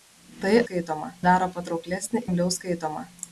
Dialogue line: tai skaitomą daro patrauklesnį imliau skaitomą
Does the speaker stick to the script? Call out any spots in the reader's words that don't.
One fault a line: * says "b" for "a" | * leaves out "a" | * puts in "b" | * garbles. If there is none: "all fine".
all fine